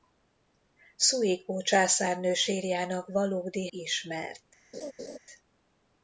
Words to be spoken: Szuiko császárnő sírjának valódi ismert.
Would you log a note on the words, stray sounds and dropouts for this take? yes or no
yes